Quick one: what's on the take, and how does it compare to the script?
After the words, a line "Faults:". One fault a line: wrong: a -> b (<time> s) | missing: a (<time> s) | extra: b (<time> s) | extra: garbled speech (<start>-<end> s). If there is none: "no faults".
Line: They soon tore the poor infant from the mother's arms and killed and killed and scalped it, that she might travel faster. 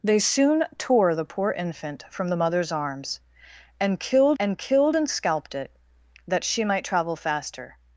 They soon tore the poor infant from the mother's arms and killed and killed and scalped it, that she might travel faster.
Faults:
no faults